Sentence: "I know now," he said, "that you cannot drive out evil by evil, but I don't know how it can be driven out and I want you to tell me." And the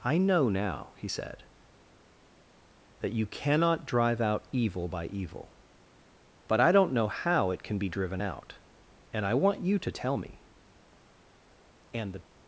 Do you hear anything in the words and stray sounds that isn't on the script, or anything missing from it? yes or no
no